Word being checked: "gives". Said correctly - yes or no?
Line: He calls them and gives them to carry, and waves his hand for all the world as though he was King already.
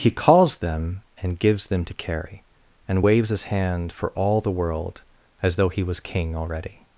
yes